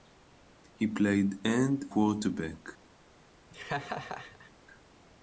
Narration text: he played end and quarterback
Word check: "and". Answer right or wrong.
wrong